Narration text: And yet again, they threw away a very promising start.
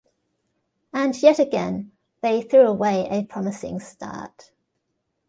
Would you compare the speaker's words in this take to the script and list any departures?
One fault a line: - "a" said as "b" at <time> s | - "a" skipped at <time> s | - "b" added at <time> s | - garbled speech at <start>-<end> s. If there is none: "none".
- "very" skipped at 3.2 s